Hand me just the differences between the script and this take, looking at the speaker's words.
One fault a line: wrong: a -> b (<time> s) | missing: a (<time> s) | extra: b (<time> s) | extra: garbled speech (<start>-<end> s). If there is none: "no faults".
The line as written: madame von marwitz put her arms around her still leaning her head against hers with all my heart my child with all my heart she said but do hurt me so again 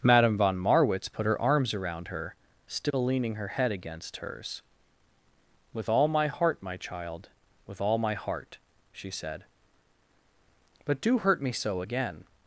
no faults